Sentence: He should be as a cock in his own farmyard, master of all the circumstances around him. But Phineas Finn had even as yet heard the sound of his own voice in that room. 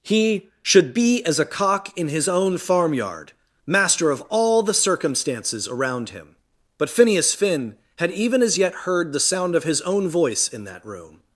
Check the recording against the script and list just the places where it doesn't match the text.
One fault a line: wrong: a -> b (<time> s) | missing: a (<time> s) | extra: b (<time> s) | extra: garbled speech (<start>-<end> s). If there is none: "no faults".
no faults